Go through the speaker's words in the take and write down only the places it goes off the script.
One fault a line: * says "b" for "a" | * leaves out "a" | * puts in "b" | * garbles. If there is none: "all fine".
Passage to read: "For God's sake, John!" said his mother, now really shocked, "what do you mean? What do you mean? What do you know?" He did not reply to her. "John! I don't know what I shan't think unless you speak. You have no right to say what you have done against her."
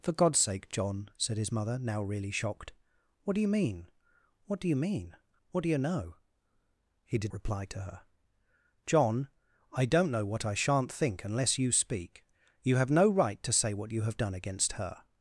* leaves out "not"